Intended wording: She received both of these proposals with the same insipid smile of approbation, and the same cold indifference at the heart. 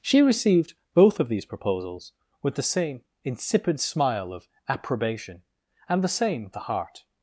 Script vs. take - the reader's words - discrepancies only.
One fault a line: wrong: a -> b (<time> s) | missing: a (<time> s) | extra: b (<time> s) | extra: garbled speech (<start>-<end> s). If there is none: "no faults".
missing: cold indifference at (6.5 s)